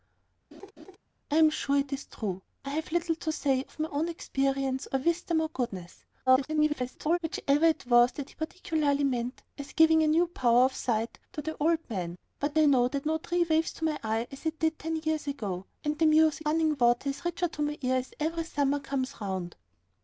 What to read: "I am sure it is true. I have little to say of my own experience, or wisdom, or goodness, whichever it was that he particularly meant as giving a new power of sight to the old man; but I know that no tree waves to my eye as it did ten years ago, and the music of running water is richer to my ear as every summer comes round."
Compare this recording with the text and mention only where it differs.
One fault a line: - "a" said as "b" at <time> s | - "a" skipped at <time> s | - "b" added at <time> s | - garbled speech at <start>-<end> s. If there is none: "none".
- garbled speech at 6.3-7.2 s
- "of" skipped at 16.5 s